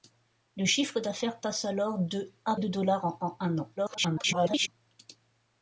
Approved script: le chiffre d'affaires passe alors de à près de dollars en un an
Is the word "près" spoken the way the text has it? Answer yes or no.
no